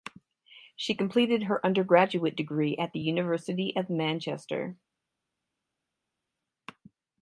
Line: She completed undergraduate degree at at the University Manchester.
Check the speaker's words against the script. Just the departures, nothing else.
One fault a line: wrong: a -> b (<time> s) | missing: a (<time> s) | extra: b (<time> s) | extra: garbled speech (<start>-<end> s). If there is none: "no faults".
extra: her (1.4 s)
missing: at (3.0 s)
extra: of (3.7 s)